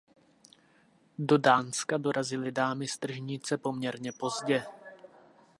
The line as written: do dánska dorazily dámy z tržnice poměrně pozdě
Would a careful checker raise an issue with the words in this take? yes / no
no